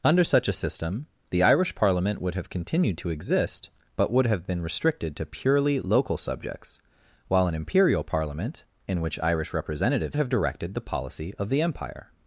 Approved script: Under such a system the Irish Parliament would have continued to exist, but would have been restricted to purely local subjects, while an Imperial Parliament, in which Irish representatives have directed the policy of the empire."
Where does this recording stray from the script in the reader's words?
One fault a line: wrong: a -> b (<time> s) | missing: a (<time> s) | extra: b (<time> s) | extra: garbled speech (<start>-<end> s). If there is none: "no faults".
no faults